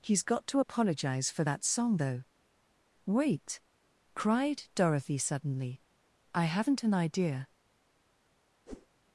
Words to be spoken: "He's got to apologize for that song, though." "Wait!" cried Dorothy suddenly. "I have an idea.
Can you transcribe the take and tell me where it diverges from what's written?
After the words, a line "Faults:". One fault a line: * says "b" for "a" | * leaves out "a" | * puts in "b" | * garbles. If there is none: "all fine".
"He's got to apologize for that song, though." "Wait!" cried Dorothy suddenly. "I haven't an idea.
Faults:
* says "haven't" for "have"